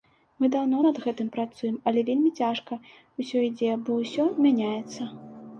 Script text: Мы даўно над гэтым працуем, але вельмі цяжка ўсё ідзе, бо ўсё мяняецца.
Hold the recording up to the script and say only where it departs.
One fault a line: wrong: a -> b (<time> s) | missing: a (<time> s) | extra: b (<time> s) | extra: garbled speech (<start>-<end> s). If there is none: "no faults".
no faults